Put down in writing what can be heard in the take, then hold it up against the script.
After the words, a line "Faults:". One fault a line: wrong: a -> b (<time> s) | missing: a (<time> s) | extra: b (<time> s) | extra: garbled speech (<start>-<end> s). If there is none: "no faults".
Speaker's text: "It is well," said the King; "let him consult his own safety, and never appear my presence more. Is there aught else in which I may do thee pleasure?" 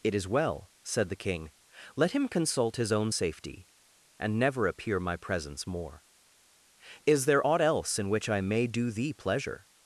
"It is well," said the King; "let him consult his own safety, and never appear my presence more. Is there aught else in which I may do thee pleasure?"
Faults:
no faults